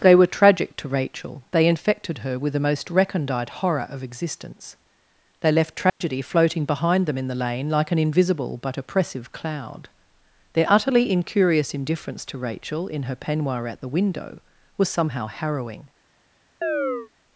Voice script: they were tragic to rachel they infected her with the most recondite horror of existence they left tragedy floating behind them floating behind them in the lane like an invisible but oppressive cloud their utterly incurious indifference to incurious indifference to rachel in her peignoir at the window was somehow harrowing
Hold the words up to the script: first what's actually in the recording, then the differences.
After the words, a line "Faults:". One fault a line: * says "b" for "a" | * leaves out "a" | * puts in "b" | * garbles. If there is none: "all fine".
they were tragic to rachel they infected her with the most recondite horror of existence they left tragedy floating behind them in the lane like an invisible but oppressive cloud their utterly incurious indifference to rachel in her peignoir at the window was somehow harrowing
Faults:
* leaves out "floating behind them"
* leaves out "incurious indifference to"